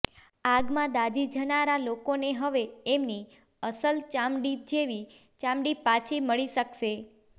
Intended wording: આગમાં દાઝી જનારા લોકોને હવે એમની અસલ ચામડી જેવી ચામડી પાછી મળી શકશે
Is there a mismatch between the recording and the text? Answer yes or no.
no